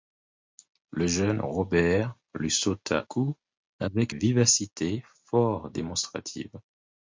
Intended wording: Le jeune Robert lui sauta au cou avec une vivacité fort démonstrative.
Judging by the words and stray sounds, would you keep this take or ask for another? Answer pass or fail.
fail